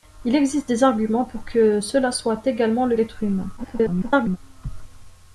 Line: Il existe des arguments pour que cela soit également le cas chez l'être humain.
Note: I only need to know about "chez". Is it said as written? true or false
false